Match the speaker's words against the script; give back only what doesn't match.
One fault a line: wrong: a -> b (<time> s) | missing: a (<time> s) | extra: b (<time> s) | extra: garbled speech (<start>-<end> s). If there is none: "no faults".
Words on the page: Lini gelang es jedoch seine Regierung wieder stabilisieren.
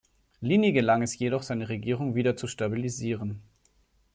extra: zu (2.4 s)